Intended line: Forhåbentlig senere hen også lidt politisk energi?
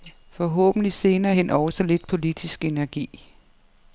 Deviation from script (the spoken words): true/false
false